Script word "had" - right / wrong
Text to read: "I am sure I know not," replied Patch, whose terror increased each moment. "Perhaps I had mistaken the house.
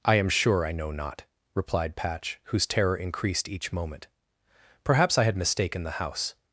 right